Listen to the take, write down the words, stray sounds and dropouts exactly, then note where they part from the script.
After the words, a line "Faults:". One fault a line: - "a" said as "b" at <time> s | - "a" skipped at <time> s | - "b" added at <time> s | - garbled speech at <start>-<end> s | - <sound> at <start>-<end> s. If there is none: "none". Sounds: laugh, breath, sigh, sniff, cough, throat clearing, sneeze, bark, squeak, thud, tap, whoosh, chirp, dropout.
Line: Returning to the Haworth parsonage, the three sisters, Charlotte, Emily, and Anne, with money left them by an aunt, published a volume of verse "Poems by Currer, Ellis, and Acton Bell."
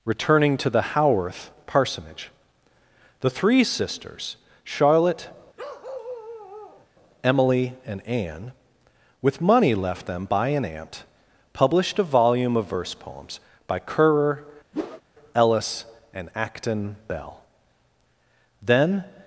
Returning to the Haworth parsonage, the three sisters, Charlotte, Emily, and Anne, with money left them by an aunt, published a volume of verse "Poems by Currer, Ellis, and Acton Bell." Then
Faults:
- bark at 5.6-6.9 s
- whoosh at 14.7-15.0 s
- "Then" added at 18.6 s